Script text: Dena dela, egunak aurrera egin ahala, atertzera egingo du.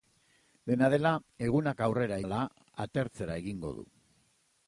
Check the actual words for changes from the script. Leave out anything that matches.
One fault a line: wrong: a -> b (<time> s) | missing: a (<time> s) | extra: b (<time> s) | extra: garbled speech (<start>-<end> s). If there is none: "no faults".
missing: egin (2.2 s)